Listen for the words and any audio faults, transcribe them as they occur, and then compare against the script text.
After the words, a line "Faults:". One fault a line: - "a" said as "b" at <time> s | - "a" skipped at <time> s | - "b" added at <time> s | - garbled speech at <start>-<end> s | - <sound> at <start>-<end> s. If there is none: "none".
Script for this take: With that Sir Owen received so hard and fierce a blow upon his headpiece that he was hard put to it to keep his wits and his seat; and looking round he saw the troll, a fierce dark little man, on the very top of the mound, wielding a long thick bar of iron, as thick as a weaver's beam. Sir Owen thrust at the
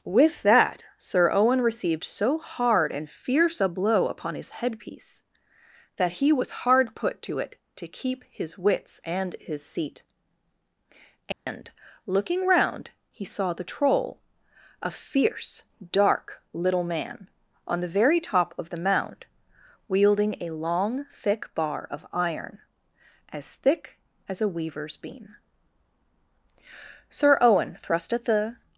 With that Sir Owen received so hard and fierce a blow upon his headpiece that he was hard put to it to keep his wits and his seat; and looking round he saw the troll, a fierce dark little man, on the very top of the mound, wielding a long thick bar of iron, as thick as a weaver's beam. Sir Owen thrust at the
Faults:
- dropout at 11.3-11.5 s